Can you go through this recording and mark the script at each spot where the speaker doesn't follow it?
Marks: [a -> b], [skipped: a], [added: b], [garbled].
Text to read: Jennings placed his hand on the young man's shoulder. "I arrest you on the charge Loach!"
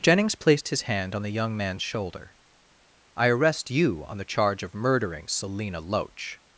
Jennings placed his hand on the young man's shoulder. "I arrest you on the charge [added: of murdering Selina] Loach!"